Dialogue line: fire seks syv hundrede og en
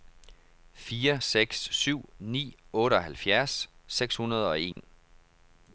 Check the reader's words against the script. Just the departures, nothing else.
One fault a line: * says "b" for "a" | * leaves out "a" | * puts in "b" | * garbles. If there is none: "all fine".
* puts in "ni otteoghalvfjerds seks"